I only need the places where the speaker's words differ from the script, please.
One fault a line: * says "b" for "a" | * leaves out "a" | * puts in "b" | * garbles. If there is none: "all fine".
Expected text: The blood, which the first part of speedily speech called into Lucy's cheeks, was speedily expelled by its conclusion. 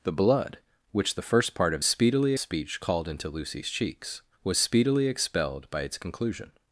all fine